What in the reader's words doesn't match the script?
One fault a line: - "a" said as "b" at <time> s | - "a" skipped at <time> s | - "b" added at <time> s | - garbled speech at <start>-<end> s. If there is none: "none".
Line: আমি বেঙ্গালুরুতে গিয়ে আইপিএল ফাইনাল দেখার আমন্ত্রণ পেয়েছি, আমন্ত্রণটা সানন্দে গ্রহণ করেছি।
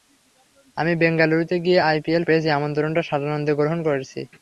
- "ফাইনাল দেখার আমন্ত্রণ" skipped at 2.2 s